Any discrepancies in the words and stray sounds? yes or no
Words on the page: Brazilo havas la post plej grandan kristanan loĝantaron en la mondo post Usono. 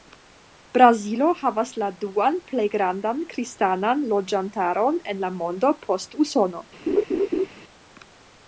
yes